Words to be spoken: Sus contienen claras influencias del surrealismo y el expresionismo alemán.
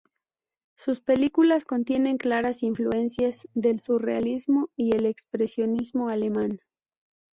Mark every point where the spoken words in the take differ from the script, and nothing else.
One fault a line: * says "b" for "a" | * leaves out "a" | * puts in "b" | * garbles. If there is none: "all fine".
* puts in "películas"